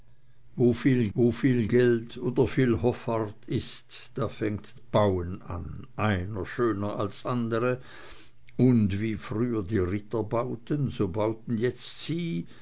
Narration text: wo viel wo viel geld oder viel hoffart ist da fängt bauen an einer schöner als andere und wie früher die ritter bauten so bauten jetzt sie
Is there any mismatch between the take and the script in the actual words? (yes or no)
no